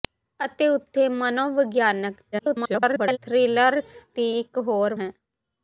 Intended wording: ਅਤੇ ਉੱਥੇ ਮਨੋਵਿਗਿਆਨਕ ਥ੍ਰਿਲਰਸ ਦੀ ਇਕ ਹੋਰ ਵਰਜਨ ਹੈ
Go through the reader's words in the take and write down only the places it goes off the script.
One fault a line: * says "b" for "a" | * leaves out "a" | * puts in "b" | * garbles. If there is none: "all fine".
* garbles
* leaves out "ਵਰਜਨ"